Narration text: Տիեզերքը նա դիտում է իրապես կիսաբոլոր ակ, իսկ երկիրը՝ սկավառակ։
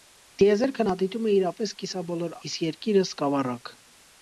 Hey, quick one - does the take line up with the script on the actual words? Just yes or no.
no